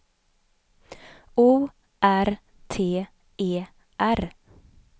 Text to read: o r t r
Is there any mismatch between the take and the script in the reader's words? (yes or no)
yes